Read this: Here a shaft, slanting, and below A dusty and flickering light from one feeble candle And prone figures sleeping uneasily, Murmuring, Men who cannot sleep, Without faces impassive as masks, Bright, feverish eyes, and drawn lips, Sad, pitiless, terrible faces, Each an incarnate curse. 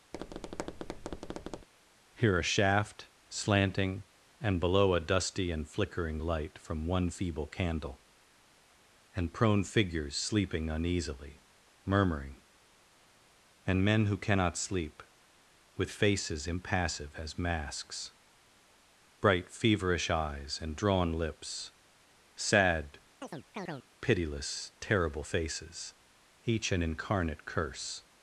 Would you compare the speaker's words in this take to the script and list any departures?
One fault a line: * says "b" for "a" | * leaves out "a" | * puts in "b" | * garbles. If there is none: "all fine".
* puts in "And"
* says "With" for "Without"